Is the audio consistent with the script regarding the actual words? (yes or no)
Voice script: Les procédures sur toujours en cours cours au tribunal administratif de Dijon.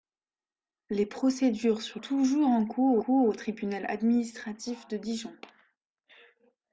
yes